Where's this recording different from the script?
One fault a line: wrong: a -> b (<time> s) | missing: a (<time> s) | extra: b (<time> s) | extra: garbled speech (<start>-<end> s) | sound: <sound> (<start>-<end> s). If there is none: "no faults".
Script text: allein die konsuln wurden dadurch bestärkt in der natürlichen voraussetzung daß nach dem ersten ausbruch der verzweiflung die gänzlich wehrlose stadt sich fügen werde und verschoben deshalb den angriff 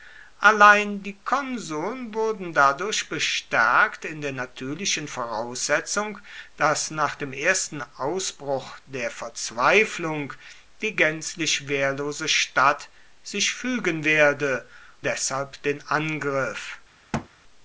missing: und verschoben (14.7 s)
sound: thud (17.1-17.3 s)